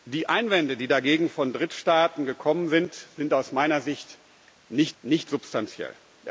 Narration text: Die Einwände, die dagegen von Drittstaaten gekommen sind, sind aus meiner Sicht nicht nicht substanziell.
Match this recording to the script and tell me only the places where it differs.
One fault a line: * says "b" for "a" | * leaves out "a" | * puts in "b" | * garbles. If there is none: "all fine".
all fine